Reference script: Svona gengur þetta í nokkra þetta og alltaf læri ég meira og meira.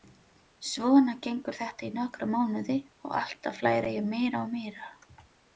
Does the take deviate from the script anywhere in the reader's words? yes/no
yes